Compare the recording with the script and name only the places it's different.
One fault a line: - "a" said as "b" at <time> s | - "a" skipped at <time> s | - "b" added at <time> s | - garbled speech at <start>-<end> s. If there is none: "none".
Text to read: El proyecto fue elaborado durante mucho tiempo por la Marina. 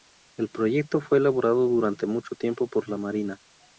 none